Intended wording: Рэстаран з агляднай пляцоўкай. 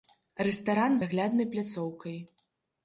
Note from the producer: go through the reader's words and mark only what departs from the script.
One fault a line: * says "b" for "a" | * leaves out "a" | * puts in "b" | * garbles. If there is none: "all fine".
all fine